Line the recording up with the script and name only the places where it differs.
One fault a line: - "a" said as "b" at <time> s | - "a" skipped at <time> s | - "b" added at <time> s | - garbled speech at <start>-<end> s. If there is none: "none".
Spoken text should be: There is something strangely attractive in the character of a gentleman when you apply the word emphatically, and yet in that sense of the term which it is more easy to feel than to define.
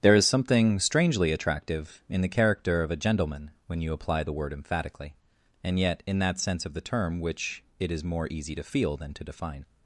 none